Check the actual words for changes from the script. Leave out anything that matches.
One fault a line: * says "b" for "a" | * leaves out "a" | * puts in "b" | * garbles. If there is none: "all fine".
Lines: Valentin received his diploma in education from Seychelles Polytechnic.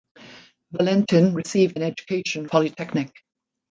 * leaves out "his diploma"
* leaves out "from Seychelles"